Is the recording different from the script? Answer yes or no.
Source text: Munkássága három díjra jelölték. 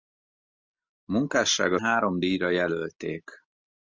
no